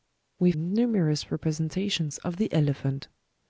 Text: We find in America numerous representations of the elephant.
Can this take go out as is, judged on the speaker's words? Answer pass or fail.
fail